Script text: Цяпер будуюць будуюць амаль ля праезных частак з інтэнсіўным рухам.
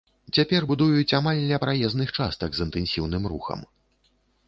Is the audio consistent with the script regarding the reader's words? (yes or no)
no